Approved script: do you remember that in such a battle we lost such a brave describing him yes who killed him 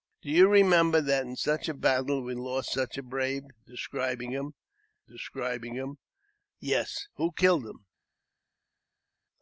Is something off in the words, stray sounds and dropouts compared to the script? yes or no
yes